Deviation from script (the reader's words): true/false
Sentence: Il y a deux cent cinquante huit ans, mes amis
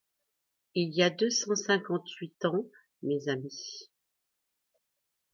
false